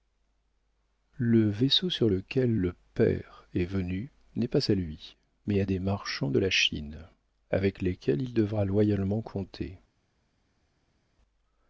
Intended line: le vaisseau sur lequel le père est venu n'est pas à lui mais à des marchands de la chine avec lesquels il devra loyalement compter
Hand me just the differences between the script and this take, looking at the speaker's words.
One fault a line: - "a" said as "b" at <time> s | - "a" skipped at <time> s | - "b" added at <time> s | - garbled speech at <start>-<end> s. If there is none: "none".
none